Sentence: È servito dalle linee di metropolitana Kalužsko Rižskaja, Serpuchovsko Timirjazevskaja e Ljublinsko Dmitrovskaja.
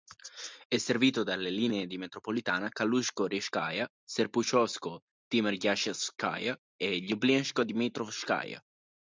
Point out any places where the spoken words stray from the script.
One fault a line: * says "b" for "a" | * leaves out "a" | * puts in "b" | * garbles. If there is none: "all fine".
all fine